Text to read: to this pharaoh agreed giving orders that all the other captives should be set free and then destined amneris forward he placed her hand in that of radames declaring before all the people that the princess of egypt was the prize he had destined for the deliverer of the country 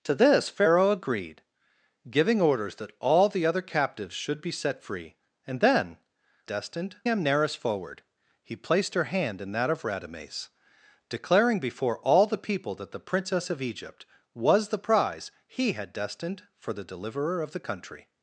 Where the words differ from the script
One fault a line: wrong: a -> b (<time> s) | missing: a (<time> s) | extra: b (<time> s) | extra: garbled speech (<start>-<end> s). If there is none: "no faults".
no faults